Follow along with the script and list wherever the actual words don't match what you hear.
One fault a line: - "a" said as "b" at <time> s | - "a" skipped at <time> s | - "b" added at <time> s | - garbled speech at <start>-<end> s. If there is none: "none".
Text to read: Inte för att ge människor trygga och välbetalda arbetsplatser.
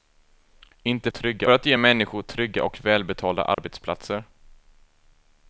- "för" said as "trygga" at 1.1 s